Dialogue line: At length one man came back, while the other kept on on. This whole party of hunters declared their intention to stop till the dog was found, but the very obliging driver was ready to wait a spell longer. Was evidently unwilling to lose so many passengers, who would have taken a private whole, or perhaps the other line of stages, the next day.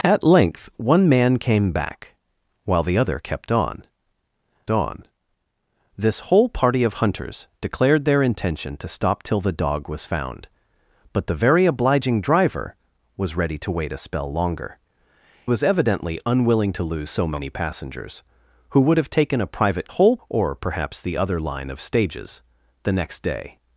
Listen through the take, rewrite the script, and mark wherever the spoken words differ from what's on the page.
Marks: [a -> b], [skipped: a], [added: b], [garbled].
At length one man came back, while the other kept on on. This whole party of hunters declared their intention to stop till the dog was found, but the very obliging driver was ready to wait a spell longer. Was evidently unwilling to lose so many passengers, who would have taken a private whole, or perhaps the other line of stages, the next day.